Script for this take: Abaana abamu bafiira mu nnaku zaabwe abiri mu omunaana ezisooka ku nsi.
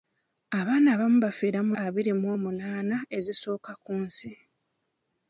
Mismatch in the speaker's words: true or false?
true